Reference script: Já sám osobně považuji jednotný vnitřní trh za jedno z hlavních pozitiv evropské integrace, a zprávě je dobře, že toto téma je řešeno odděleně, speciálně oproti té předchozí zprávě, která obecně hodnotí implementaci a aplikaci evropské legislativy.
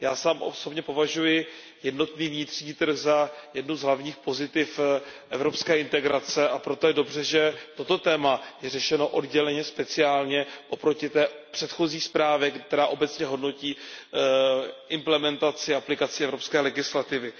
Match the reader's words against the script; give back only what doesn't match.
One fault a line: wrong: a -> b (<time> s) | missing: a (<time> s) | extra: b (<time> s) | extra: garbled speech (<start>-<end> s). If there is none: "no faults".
wrong: zprávě -> proto (6.6 s)